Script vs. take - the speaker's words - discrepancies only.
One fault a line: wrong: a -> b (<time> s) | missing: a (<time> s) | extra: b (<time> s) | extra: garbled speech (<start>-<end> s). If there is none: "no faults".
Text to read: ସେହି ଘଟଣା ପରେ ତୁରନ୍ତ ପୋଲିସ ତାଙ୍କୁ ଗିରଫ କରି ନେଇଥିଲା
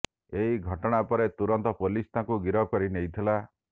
wrong: ସେହି -> ଏହି (0.3 s)